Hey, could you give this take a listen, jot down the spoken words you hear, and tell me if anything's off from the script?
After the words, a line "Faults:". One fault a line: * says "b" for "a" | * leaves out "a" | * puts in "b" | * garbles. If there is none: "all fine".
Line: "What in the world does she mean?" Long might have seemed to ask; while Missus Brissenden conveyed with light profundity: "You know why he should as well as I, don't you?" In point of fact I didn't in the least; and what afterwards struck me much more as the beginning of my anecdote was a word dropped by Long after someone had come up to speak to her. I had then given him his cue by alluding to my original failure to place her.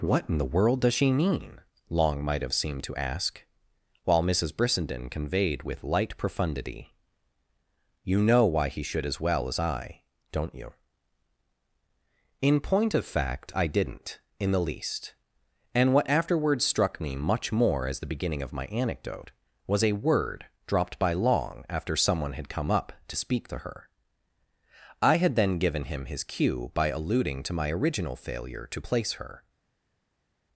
"What in the world does she mean?" Long might have seemed to ask; while Missus Brissenden conveyed with light profundity: "You know why he should as well as I, don't you?" In point of fact I didn't in the least; and what afterwards struck me much more as the beginning of my anecdote was a word dropped by Long after someone had come up to speak to her. I had then given him his cue by alluding to my original failure to place her.
Faults:
all fine